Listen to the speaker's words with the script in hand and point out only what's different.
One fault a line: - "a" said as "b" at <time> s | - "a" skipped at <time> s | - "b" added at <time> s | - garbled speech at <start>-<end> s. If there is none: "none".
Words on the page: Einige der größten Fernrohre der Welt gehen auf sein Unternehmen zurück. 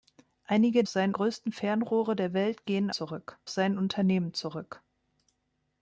- "der" said as "sein" at 0.9 s
- "auf" said as "zurück" at 2.9 s